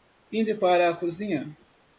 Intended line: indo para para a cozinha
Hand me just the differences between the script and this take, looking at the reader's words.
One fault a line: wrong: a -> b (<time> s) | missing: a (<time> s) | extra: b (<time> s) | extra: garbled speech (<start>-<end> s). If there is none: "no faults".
missing: para (0.9 s)